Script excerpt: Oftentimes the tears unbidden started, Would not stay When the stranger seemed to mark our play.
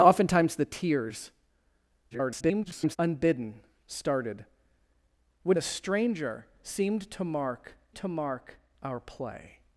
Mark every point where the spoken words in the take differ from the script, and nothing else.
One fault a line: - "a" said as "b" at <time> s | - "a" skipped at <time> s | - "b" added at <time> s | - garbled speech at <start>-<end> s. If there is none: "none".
- garbled speech at 2.1-3.0 s
- "not stay When" skipped at 5.6 s
- "to mark" added at 8.0 s